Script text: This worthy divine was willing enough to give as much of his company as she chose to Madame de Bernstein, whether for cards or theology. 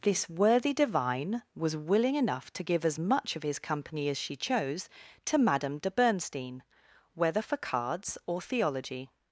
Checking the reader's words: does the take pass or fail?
pass